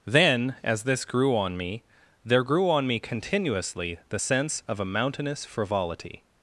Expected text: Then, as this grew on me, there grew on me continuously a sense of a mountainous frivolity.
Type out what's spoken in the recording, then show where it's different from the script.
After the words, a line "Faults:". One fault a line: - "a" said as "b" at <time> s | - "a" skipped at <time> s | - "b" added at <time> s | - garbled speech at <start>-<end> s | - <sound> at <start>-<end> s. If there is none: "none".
Then, as this grew on me, there grew on me continuously the sense of a mountainous frivolity.
Faults:
- "a" said as "the" at 4.1 s